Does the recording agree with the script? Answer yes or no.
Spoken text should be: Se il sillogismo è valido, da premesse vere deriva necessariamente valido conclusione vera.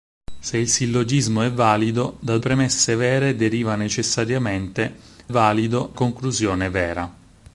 yes